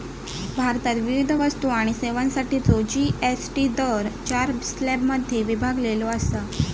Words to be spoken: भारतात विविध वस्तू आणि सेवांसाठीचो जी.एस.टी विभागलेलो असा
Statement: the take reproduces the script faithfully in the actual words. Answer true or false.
false